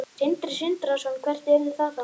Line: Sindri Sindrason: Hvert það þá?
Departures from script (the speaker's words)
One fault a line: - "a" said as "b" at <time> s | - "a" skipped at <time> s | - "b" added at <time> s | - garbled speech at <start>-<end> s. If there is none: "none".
- "yrði" added at 1.6 s